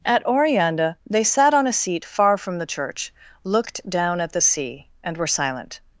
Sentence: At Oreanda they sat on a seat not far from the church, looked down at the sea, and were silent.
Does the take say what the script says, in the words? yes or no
no